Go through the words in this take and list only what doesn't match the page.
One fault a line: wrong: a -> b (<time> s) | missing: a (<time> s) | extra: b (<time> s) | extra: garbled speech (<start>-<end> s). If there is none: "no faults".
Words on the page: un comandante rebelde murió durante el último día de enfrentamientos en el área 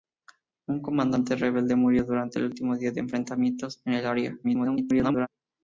extra: garbled speech (4.4-5.3 s)